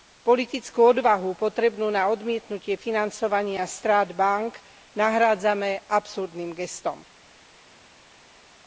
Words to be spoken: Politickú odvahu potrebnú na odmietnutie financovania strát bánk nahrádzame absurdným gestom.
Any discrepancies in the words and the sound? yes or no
no